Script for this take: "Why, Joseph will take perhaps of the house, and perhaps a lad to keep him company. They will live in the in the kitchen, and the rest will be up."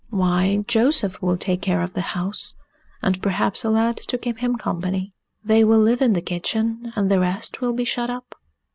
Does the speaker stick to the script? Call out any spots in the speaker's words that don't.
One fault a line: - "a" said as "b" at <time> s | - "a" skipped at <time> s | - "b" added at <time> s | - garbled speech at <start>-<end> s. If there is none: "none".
- "perhaps" said as "care" at 1.6 s
- "in the" skipped at 6.2 s
- "shut" added at 7.8 s